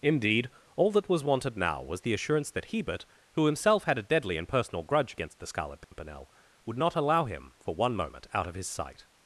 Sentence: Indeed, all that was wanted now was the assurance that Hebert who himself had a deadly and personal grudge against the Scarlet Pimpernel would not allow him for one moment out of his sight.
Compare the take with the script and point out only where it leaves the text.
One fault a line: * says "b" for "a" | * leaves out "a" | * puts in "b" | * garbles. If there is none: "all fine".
all fine